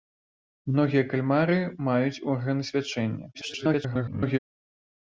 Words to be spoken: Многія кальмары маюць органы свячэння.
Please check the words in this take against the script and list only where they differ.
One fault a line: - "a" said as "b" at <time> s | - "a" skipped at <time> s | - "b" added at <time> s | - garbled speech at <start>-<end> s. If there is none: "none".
- garbled speech at 3.3-4.4 s